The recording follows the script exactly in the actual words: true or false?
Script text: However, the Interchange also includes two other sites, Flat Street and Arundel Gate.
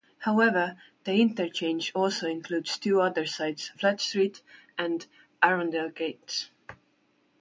true